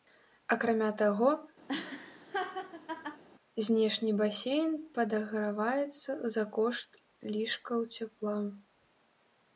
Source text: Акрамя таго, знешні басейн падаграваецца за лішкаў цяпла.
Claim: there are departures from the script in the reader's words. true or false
true